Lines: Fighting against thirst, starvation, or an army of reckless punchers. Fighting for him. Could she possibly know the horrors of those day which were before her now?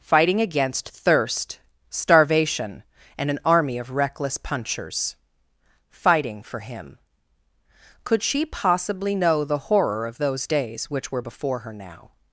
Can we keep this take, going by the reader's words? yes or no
no